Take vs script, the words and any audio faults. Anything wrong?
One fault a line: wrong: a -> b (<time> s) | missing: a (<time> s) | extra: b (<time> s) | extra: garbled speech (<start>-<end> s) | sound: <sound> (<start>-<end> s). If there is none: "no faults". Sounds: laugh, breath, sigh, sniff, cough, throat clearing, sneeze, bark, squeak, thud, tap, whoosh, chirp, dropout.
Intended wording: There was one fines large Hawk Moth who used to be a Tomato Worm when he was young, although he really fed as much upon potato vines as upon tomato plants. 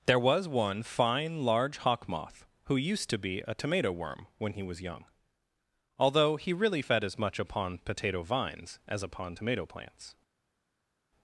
wrong: fines -> fine (0.8 s)